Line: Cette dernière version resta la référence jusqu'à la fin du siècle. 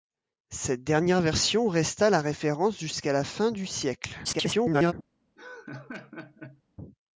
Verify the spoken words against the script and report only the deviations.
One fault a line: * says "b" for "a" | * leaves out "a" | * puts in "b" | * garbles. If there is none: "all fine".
* garbles